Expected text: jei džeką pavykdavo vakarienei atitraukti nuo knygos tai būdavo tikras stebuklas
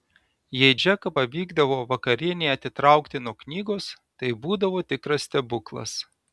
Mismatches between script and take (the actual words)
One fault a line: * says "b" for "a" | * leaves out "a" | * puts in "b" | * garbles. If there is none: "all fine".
all fine